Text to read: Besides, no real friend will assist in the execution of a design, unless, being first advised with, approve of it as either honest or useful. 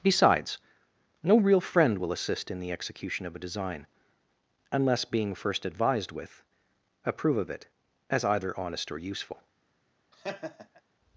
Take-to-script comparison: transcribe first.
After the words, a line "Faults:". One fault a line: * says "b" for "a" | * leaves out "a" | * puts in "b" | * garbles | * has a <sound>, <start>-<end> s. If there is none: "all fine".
Besides, no real friend will assist in the execution of a design, unless, being first advised with, approve of it as either honest or useful.
Faults:
* has a laugh, 10.1-10.8 s